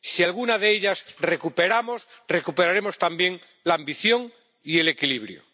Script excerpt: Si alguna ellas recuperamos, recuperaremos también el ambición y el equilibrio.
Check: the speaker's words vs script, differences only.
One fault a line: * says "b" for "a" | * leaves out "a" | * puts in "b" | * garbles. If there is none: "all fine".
* puts in "de"
* says "la" for "el"